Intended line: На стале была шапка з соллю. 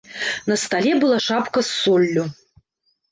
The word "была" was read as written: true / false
true